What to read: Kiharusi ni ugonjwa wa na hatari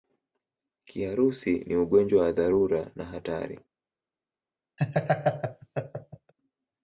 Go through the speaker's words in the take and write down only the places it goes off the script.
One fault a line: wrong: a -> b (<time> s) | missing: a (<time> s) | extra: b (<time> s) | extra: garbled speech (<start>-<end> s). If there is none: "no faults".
extra: dharura (2.3 s)